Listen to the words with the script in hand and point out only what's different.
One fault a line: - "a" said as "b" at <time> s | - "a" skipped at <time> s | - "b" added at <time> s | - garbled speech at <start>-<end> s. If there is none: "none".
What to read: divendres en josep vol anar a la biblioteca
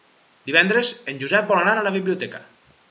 none